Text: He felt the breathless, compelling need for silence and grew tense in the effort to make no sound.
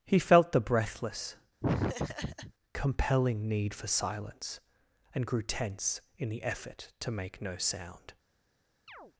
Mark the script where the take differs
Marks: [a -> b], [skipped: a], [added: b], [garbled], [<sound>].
He felt the breathless, [laugh] compelling need for silence and grew tense in the effort to make no sound. [chirp]